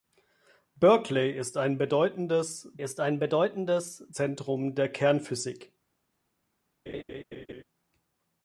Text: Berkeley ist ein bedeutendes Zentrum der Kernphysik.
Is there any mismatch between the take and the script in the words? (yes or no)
yes